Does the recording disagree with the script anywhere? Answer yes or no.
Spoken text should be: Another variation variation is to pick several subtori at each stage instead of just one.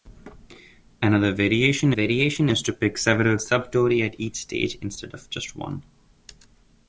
no